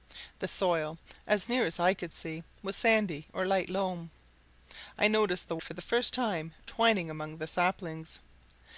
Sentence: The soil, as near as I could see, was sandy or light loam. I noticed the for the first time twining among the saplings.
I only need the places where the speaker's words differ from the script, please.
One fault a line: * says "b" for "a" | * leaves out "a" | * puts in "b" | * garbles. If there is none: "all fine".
all fine